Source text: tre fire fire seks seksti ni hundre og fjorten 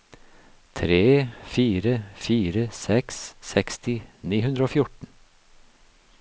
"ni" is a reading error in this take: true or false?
false